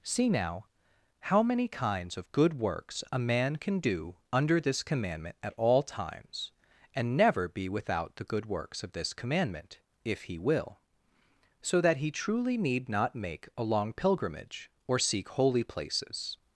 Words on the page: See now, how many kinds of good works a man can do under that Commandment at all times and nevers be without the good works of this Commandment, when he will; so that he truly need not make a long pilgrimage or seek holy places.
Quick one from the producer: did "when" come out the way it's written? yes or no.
no